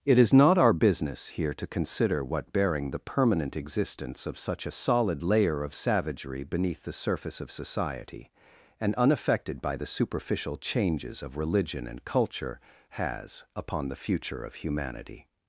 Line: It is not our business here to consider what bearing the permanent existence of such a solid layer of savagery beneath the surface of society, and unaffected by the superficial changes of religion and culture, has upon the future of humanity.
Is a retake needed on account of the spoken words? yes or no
no